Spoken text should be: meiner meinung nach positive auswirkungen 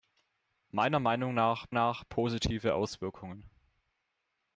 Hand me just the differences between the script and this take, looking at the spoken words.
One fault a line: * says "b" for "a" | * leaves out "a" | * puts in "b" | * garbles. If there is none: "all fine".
* puts in "nach"